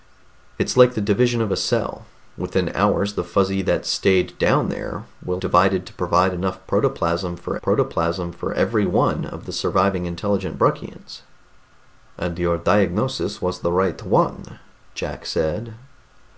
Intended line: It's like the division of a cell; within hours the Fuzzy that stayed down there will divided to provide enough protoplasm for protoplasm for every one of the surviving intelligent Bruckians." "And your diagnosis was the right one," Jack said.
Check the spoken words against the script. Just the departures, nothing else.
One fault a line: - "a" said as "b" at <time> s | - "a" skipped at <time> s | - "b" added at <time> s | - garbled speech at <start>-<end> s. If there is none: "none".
none